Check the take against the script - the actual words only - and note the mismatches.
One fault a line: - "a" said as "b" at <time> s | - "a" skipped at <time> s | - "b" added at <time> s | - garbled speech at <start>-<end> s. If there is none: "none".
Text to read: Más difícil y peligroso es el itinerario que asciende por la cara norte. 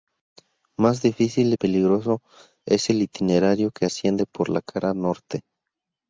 none